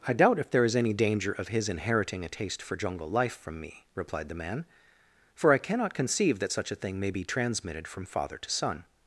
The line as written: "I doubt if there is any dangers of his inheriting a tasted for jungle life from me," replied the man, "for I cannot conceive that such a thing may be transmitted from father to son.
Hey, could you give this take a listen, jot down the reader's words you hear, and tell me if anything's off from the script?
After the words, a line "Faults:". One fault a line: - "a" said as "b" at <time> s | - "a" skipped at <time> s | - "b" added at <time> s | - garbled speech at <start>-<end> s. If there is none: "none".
"I doubt if there is any danger of his inheriting a taste for jungle life from me," replied the man, "for I cannot conceive that such a thing may be transmitted from father to son.
Faults:
- "dangers" said as "danger" at 0.9 s
- "tasted" said as "taste" at 2.3 s